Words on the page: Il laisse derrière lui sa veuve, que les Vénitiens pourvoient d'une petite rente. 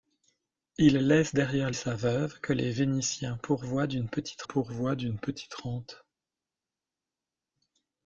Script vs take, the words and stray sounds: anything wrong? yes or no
yes